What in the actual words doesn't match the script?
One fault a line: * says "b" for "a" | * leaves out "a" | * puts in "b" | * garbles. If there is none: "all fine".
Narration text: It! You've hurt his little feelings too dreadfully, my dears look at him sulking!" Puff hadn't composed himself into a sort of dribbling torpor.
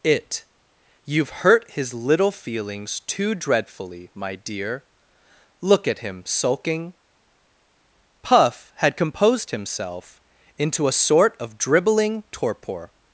* says "dear" for "dears"
* says "had" for "hadn't"